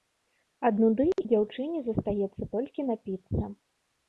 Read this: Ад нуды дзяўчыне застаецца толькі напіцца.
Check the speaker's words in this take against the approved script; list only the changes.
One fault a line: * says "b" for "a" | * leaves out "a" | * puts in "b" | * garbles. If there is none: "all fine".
all fine